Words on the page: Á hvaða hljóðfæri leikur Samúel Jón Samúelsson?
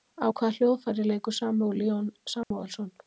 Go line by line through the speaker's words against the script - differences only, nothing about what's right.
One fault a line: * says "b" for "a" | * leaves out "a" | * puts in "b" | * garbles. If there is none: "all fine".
all fine